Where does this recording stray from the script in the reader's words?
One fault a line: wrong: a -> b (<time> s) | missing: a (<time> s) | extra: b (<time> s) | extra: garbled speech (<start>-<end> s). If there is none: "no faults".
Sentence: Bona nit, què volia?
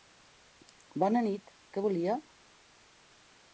no faults